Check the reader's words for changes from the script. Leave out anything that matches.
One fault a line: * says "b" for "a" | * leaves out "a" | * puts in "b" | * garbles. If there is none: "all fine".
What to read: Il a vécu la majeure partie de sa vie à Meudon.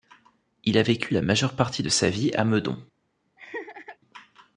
all fine